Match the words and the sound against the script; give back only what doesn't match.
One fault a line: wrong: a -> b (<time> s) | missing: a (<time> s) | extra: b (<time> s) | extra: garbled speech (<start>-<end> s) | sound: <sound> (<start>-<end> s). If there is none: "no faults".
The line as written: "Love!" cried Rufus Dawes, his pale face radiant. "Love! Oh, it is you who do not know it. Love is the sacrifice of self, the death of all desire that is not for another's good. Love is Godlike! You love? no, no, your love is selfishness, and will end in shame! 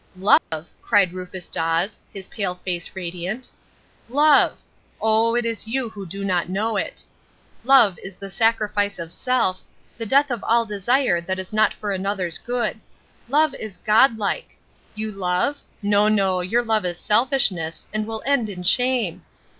sound: dropout (0.4-0.5 s)